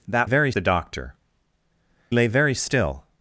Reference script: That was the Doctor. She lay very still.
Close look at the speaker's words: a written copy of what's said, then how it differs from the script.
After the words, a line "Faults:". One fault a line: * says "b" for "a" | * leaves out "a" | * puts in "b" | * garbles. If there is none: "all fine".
That very the Doctor. Lay very still.
Faults:
* says "very" for "was"
* leaves out "She"